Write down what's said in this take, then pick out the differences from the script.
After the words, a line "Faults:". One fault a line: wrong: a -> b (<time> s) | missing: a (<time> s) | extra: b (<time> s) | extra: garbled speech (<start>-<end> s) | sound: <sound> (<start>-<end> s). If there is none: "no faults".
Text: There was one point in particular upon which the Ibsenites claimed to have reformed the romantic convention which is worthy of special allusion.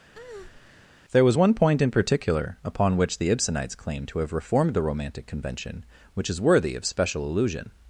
There was one point in particular upon which the Ibsenites claimed to have reformed the romantic convention which is worthy of special allusion.
Faults:
sound: breath (0.1-0.9 s)